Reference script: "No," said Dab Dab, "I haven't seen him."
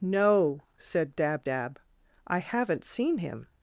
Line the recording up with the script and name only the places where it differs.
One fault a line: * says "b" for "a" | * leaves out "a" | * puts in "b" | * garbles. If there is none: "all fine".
all fine